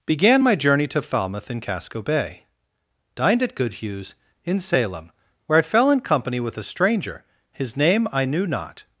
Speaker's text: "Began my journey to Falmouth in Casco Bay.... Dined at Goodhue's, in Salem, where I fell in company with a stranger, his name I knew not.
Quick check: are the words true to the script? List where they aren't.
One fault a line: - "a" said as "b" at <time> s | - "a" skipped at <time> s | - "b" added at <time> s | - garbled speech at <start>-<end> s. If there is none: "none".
none